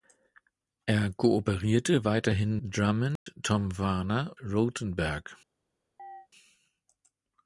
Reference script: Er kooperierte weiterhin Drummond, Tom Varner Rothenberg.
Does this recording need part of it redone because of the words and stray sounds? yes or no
yes